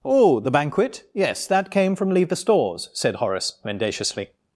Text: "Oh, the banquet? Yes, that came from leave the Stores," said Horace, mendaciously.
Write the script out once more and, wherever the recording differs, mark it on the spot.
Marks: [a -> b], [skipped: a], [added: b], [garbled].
"Oh, the banquet? Yes, that came from leave the Stores," said Horace, mendaciously.